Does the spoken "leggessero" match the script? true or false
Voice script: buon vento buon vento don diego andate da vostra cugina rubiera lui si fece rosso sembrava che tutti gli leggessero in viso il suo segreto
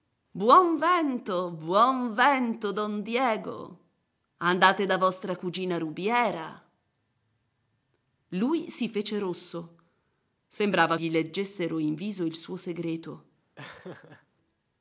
true